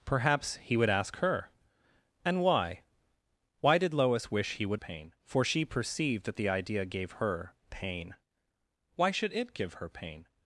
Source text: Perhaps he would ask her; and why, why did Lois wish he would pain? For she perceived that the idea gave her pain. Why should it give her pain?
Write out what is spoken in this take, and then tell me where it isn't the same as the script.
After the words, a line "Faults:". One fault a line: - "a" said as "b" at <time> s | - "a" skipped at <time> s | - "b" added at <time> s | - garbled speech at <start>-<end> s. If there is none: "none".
Perhaps he would ask her; and why, why did Lois wish he would pain? For she perceived that the idea gave her pain. Why should it give her pain?
Faults:
none